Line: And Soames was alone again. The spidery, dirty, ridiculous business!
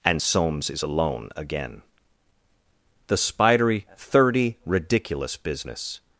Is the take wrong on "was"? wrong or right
wrong